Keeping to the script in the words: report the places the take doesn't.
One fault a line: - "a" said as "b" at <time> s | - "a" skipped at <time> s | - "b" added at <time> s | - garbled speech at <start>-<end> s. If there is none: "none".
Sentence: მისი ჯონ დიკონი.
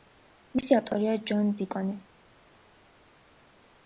- "ავტორია" added at 0.8 s